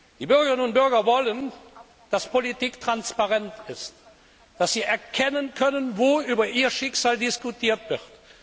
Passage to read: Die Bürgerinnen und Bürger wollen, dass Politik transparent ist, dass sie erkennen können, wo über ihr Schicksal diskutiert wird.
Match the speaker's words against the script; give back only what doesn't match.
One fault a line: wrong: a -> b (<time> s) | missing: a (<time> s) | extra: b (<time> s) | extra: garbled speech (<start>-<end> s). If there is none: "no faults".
no faults